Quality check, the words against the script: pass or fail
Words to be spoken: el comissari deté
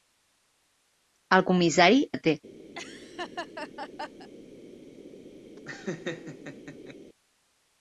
pass